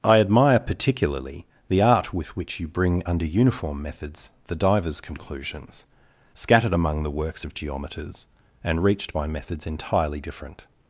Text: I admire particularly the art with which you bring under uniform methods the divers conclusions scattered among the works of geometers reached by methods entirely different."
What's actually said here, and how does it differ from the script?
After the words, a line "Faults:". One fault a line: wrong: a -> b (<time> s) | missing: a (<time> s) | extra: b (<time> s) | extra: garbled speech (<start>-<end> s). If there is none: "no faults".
I admire particularly the art with which you bring under uniform methods the divers conclusions scattered among the works of geometers and reached by methods entirely different."
Faults:
extra: and (8.6 s)